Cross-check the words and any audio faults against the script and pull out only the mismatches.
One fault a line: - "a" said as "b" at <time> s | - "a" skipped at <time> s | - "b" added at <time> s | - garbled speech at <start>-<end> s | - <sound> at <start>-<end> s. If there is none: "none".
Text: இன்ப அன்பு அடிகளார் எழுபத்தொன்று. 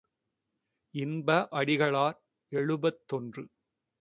- "அன்பு" skipped at 1.5 s